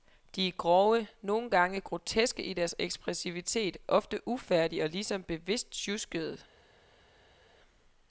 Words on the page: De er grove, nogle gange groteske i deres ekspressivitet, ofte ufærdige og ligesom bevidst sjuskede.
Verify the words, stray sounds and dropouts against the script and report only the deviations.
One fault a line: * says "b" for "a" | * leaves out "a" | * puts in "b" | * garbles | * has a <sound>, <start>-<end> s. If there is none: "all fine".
all fine